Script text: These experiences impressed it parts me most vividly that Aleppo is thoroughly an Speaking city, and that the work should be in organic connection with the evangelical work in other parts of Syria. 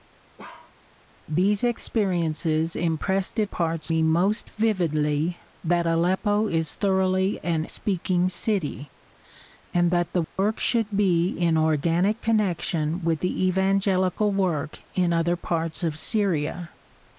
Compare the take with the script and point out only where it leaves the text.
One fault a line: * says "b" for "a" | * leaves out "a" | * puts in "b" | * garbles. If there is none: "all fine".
all fine